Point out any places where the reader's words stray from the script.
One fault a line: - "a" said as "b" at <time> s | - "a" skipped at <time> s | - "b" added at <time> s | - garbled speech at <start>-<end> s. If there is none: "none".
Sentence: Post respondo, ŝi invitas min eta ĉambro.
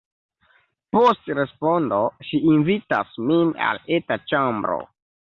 - "al" added at 3.7 s